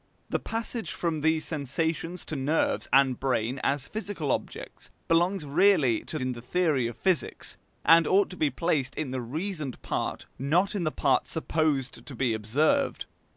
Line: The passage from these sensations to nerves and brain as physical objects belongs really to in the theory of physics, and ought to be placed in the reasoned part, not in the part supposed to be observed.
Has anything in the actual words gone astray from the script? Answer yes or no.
no